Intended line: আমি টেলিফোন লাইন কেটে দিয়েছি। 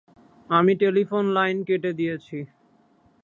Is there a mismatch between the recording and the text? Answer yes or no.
no